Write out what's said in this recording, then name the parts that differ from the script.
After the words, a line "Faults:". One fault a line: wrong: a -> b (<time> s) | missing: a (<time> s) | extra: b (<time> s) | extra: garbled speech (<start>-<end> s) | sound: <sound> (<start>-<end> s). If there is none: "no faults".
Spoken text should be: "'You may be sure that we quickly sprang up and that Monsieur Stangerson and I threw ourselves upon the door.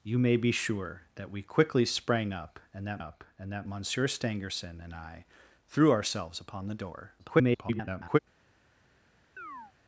"'You may be sure that we quickly sprang up and that up and that Monsieur Stangerson and I threw ourselves upon the door. [garbled]
Faults:
extra: up and that (3.0 s)
extra: garbled speech (7.2-8.2 s)
sound: chirp (9.4-9.7 s)